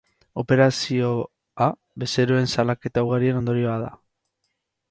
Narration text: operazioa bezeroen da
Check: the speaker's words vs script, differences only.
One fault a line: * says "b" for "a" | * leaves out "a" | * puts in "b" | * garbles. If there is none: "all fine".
* puts in "salaketa ugarien ondorioa"